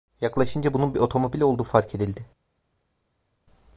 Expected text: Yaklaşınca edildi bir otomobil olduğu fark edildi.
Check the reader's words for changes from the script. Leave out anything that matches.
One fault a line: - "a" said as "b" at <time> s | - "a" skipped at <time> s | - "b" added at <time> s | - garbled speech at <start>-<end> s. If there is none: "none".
- "edildi" said as "bunun" at 0.7 s